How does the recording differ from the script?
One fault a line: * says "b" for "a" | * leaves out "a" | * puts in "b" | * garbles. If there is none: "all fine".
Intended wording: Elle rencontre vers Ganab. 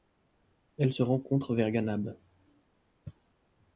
* puts in "se"